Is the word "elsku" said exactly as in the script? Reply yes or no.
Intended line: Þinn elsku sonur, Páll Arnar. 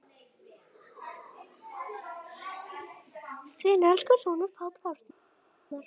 yes